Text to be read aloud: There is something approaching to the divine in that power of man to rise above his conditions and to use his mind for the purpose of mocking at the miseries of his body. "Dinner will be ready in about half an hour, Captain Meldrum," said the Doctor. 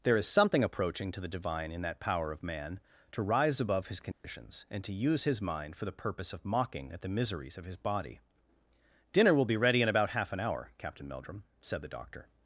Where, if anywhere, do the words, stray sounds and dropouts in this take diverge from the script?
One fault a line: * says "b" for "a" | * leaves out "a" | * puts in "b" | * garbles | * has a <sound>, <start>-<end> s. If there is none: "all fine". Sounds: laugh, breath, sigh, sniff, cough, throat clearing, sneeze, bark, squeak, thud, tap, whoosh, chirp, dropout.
* has a dropout, 4.1-4.2 s